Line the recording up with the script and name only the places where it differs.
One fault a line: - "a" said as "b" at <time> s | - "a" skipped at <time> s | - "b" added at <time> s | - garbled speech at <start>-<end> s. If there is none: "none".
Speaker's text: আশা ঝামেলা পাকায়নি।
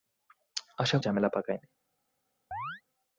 none